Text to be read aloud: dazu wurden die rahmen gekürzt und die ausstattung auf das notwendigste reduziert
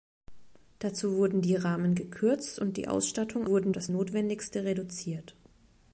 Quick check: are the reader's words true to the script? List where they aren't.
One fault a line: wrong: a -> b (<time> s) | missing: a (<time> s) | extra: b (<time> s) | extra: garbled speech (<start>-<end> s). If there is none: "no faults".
wrong: auf -> wurden (3.5 s)